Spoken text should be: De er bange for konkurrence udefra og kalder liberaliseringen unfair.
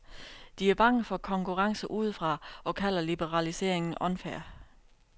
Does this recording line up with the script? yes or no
yes